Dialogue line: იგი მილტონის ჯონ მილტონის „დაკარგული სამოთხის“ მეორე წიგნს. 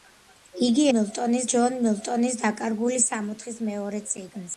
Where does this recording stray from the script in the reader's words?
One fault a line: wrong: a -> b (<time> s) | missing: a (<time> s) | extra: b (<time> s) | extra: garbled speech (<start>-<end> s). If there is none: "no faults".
no faults